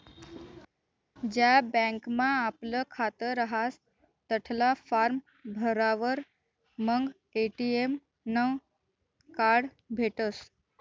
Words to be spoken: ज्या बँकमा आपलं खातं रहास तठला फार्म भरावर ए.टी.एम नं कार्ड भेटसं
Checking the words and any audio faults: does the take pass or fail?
fail